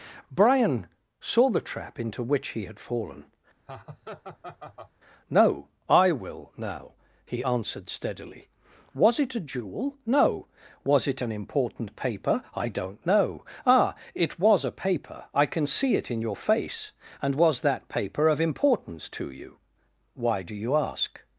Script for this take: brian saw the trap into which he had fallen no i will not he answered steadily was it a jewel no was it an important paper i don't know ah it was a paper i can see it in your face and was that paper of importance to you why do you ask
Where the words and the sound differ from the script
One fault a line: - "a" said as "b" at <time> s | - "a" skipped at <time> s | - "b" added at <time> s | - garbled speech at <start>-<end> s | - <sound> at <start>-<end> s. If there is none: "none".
- laugh at 3.7-4.9 s
- "not" said as "now" at 6.6 s